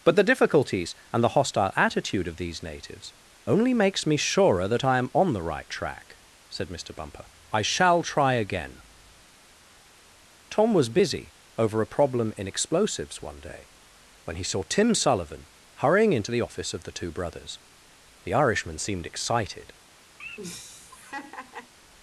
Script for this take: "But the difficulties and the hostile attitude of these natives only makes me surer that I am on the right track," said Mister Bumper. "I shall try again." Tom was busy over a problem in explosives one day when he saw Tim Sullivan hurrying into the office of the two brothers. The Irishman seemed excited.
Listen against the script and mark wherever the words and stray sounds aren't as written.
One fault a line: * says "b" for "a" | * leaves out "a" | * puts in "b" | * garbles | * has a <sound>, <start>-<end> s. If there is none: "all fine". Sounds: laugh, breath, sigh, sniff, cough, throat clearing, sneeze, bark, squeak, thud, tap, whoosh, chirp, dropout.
* has a laugh, 20.2-21.7 s